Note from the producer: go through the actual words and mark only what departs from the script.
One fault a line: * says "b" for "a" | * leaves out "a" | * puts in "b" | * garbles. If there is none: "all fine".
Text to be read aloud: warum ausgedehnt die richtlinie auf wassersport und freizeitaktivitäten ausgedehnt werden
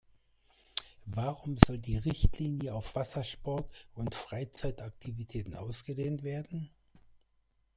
* says "soll" for "ausgedehnt"